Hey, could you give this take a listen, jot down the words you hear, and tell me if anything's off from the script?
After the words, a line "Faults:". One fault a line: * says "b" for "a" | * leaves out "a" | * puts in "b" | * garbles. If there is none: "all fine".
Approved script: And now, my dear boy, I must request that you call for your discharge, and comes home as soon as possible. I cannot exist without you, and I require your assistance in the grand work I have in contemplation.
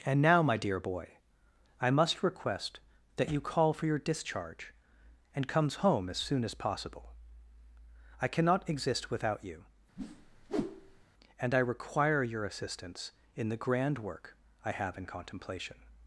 And now, my dear boy, I must request that you call for your discharge, and comes home as soon as possible. I cannot exist without you, and I require your assistance in the grand work I have in contemplation.
Faults:
all fine